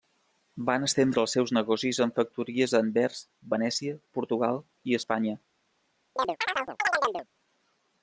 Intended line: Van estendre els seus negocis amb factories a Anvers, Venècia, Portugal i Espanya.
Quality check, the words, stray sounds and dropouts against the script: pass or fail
fail